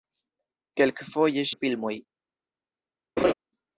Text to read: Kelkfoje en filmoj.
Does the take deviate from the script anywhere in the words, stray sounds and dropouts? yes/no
yes